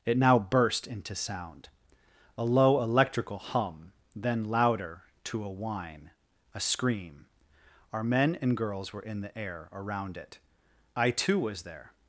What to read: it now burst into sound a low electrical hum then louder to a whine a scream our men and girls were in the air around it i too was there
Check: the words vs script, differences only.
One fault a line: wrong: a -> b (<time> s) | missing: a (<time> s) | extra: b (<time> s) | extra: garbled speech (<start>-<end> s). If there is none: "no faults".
no faults